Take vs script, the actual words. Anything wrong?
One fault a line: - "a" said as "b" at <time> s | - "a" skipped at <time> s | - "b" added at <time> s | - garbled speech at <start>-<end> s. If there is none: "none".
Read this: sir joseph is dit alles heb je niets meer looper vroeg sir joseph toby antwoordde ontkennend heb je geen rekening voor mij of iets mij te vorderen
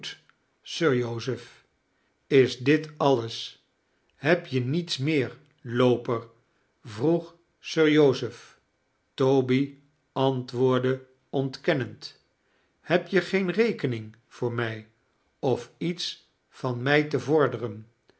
- "van" added at 16.5 s